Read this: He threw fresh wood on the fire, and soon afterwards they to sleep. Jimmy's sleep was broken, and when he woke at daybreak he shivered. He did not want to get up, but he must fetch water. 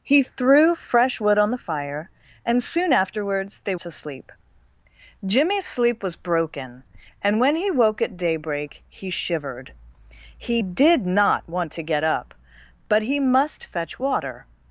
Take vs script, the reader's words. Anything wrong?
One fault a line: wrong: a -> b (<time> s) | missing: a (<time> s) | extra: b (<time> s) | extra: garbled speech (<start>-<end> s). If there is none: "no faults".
no faults